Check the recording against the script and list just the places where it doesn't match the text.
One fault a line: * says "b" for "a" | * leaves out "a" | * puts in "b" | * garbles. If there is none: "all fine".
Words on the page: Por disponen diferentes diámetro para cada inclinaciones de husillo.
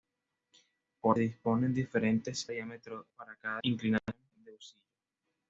all fine